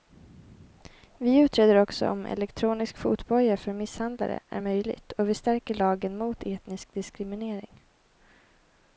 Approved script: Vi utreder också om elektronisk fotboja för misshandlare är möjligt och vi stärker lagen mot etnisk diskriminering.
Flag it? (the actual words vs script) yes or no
no